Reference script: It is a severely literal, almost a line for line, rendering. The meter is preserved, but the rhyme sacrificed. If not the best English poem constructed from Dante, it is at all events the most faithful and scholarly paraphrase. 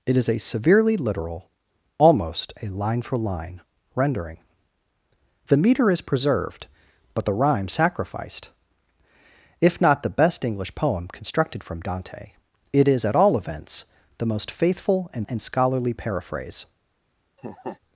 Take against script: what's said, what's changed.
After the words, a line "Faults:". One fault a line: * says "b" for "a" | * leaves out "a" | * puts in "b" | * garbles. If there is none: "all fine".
It is a severely literal, almost a line for line, rendering. The meter is preserved, but the rhyme sacrificed. If not the best English poem constructed from Dante, it is at all events the most faithful and and scholarly paraphrase.
Faults:
* puts in "and"